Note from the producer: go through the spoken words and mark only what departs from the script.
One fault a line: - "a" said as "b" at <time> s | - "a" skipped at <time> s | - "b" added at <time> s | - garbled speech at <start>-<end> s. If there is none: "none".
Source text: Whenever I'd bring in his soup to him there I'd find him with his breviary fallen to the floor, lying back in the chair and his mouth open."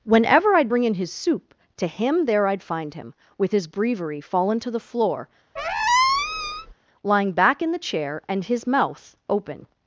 none